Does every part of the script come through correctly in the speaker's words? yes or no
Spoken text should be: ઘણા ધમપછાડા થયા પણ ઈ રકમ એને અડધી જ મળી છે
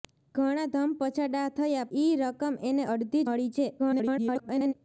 no